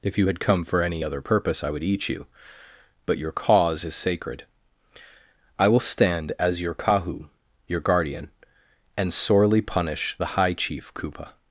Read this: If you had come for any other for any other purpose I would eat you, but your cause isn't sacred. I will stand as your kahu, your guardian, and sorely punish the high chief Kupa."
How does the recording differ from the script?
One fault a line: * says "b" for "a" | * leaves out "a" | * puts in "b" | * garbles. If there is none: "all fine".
* leaves out "for any other"
* says "is" for "isn't"